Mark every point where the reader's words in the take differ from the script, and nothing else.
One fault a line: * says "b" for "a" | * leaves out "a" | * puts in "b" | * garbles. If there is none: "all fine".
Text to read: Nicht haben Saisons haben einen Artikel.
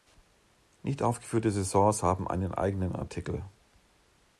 * says "aufgeführte" for "haben"
* puts in "eigenen"